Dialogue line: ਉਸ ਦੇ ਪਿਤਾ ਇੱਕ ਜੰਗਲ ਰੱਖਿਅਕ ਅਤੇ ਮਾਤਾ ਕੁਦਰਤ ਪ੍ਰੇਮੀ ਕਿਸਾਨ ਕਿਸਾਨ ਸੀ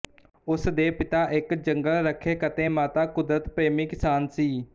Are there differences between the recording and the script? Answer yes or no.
yes